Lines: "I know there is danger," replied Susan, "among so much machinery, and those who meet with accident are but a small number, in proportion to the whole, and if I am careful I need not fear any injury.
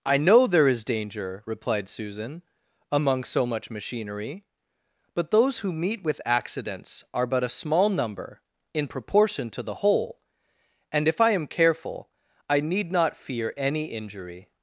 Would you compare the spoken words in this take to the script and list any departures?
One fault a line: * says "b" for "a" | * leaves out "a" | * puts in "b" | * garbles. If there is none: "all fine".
* says "but" for "and"
* says "accidents" for "accident"